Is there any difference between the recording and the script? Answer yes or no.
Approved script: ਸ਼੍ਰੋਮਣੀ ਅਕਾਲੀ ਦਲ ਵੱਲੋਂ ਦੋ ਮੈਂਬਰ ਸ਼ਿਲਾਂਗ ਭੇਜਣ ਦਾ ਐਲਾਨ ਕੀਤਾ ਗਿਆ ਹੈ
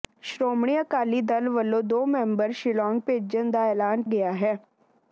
yes